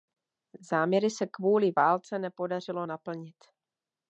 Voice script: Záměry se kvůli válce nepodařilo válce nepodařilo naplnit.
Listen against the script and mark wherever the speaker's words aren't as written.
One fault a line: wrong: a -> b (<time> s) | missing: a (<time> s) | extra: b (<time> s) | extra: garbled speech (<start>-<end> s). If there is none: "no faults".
missing: válce nepodařilo (2.9 s)